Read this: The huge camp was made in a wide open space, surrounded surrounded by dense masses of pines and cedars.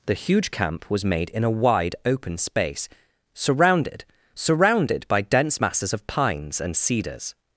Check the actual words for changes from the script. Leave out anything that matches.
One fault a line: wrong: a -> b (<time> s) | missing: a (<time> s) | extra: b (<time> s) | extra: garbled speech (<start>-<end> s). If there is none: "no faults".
no faults